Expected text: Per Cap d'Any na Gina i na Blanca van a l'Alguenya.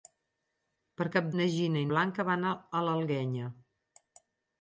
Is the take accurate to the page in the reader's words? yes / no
no